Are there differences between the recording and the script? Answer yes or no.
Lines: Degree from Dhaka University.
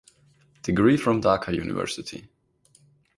no